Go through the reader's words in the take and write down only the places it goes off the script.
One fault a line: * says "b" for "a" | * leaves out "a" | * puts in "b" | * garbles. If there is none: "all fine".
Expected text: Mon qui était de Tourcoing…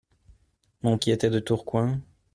all fine